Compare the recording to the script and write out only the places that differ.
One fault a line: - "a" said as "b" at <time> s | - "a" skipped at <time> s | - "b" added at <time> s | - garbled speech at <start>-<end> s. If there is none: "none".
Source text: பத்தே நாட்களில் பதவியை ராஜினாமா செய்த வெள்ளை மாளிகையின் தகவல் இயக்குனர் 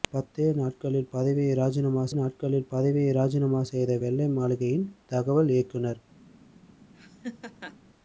- "நாட்களில் பதவியை ராஜினாமா" added at 2.1 s